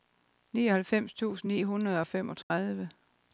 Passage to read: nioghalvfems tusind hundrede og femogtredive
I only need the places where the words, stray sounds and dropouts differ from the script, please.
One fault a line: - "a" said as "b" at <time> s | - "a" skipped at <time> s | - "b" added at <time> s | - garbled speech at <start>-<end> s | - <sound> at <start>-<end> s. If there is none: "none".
- "ni" added at 1.5 s
- dropout at 2.4-2.5 s